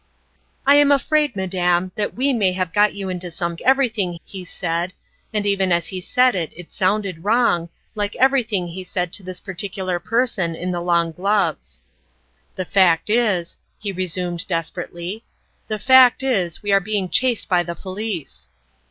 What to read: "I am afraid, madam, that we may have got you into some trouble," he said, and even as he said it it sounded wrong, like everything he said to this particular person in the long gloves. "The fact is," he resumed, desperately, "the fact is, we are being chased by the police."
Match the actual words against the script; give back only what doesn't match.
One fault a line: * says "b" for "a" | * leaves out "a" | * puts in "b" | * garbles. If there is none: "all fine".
* says "everything" for "trouble"